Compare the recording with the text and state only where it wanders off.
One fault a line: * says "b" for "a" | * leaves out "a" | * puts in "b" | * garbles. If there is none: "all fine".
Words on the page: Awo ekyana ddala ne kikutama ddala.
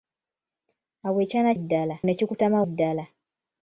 all fine